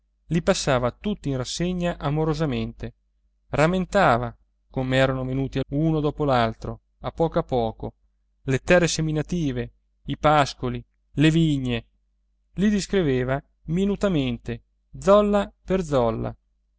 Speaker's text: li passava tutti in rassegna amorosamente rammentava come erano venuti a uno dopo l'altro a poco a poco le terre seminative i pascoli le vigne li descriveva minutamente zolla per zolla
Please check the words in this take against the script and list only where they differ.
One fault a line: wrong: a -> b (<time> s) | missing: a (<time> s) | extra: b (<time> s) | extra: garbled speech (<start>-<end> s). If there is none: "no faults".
no faults